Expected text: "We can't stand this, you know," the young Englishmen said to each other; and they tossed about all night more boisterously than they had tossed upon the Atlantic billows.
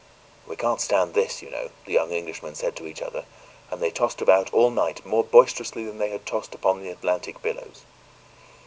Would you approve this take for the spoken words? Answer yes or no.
yes